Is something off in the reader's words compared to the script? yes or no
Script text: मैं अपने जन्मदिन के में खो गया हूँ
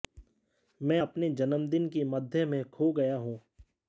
yes